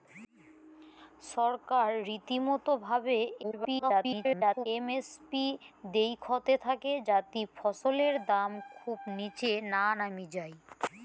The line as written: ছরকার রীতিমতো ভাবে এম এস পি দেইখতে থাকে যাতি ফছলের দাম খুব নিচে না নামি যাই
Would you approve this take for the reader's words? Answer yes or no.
no